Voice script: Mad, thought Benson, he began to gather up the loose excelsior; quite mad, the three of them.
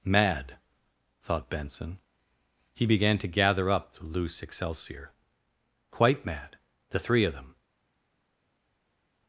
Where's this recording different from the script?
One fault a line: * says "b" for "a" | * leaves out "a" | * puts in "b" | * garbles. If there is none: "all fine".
all fine